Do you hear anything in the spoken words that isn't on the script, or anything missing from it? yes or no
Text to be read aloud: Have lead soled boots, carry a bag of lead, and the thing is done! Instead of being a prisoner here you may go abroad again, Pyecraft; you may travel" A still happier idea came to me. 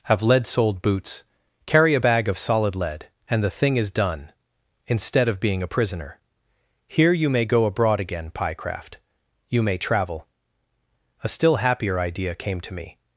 yes